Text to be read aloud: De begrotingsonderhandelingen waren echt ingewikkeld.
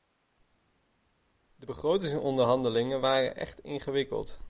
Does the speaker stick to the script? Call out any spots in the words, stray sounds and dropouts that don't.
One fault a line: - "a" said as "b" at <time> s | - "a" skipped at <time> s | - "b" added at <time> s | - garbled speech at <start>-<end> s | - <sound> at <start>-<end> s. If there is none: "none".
none